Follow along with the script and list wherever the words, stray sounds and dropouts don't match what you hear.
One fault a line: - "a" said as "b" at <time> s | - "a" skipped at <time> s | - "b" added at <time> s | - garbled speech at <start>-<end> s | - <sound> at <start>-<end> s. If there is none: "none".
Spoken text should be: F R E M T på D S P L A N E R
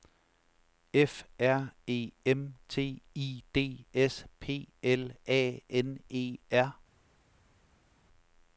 - "på" said as "I" at 3.1 s